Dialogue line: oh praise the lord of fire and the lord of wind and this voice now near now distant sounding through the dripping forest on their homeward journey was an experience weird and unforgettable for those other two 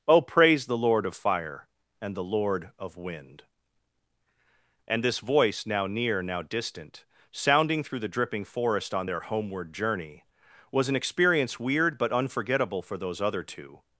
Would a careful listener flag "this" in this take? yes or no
no